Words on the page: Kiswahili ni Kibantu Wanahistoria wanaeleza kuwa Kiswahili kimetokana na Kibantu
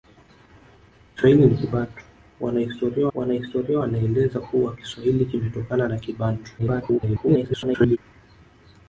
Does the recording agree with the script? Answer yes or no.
no